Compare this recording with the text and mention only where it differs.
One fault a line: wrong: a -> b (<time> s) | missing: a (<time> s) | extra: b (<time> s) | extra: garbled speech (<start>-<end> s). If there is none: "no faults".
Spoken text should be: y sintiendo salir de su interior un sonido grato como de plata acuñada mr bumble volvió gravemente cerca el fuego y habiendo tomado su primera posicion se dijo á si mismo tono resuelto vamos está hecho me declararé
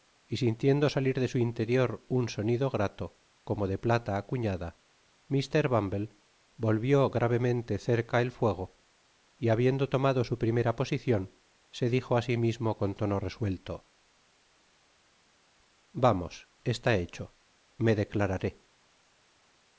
extra: con (12.8 s)